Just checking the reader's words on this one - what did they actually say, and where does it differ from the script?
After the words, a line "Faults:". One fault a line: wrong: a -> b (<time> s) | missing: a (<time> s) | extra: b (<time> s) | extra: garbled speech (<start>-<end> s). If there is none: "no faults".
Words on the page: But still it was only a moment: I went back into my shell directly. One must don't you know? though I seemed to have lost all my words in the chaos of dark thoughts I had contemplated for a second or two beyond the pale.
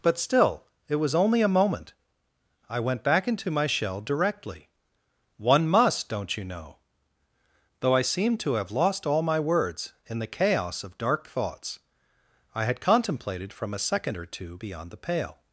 But still it was only a moment: I went back into my shell directly. One must don't you know? though I seemed to have lost all my words in the chaos of dark thoughts I had contemplated from a second or two beyond the pale.
Faults:
wrong: for -> from (13.5 s)